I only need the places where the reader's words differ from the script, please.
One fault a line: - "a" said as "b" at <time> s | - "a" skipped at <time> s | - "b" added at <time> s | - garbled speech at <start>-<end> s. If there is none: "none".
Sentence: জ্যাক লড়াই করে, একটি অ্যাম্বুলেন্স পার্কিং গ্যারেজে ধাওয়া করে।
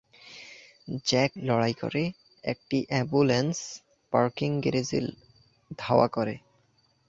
none